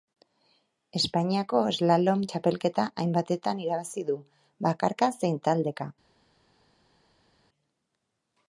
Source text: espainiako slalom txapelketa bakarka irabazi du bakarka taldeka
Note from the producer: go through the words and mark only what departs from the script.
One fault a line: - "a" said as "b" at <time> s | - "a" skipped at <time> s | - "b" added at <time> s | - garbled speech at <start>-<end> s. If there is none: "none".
- "bakarka" said as "hainbatetan" at 3.0 s
- "zein" added at 5.2 s